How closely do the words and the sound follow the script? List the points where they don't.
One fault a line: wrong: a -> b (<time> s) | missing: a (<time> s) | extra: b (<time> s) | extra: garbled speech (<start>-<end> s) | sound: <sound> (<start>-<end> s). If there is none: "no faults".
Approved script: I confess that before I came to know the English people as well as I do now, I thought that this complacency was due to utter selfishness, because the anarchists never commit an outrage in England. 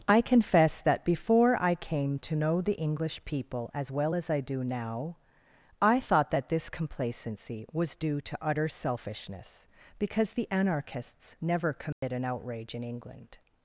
sound: dropout (11.9-12.0 s)